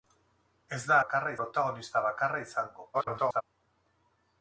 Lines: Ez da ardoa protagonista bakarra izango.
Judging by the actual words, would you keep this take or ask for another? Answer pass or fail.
fail